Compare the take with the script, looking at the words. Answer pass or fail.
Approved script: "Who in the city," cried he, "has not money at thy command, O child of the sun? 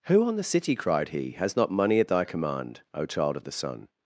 fail